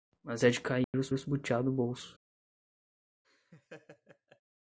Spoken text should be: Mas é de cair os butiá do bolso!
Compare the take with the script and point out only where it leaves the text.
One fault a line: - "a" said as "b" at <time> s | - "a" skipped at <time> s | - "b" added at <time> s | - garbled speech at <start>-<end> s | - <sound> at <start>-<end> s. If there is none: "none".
- dropout at 0.8-0.9 s
- "os" added at 1.1 s
- laugh at 3.2-4.4 s